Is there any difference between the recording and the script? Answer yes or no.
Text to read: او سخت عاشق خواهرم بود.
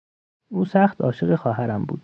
no